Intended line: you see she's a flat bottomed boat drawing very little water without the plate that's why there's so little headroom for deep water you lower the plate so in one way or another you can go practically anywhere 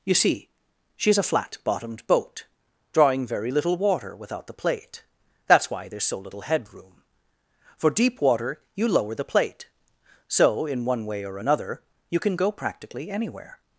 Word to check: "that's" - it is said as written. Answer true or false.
true